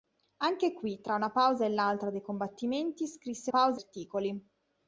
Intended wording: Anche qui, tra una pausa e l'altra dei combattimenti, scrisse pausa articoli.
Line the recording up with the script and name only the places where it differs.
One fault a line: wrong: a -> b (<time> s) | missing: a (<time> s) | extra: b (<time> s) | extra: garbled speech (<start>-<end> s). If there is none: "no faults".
no faults